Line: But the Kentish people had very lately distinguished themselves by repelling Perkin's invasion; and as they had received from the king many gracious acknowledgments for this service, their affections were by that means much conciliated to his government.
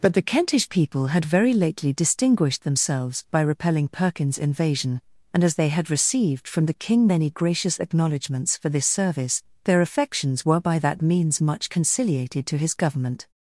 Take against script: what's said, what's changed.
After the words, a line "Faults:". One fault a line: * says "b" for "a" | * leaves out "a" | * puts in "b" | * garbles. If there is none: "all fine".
But the Kentish people had very lately distinguished themselves by repelling Perkin's invasion; and as they had received from the king many gracious acknowledgments for this service, their affections were by that means much conciliated to his government.
Faults:
all fine